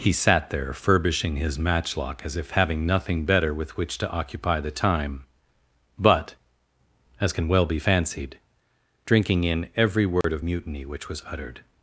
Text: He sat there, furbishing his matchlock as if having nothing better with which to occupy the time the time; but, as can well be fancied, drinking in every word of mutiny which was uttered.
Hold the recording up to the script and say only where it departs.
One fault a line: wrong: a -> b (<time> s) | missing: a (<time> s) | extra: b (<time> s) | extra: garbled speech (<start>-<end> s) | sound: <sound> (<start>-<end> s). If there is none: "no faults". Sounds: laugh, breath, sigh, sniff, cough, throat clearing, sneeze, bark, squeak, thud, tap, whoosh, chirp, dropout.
missing: the time (5.2 s)
sound: dropout (10.2-10.2 s)